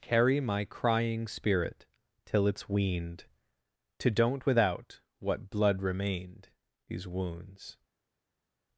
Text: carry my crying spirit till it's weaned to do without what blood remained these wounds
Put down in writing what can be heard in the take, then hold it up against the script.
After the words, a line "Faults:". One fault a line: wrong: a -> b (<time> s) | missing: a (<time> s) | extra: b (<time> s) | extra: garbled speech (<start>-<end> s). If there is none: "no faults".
carry my crying spirit till it's weaned to don't without what blood remained these wounds
Faults:
wrong: do -> don't (4.1 s)